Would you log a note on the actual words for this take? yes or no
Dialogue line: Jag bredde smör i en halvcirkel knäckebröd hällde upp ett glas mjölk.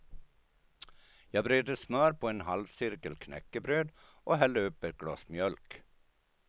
yes